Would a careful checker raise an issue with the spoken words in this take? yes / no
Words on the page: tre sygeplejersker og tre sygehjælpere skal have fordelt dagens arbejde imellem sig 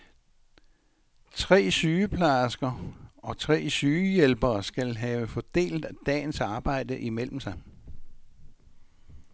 no